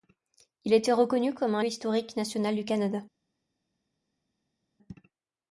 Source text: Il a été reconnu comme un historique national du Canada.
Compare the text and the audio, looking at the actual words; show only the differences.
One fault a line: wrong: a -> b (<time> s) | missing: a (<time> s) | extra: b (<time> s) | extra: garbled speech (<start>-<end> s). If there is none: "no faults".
no faults